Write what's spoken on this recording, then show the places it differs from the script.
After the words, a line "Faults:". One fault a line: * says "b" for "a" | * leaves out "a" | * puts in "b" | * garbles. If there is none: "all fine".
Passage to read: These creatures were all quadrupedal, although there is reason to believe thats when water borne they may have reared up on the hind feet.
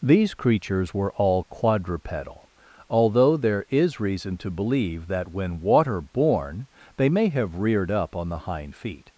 These creatures were all quadrupedal, although there is reason to believe that when water borne they may have reared up on the hind feet.
Faults:
* says "that" for "thats"